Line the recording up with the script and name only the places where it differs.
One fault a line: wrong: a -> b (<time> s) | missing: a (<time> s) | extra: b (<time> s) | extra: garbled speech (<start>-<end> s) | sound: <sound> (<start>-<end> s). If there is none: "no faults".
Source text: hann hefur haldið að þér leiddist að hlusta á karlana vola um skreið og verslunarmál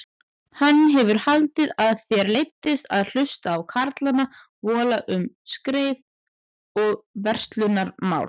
no faults